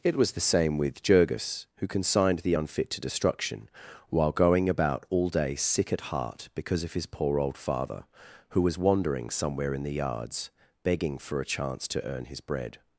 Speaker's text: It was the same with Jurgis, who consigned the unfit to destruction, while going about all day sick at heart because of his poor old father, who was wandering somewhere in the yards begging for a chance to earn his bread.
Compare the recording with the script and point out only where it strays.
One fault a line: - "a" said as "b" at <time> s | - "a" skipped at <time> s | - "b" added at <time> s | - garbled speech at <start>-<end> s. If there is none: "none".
none